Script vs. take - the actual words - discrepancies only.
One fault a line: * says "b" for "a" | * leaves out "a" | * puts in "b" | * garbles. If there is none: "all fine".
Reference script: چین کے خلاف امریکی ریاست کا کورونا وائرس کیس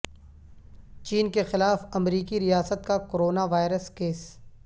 all fine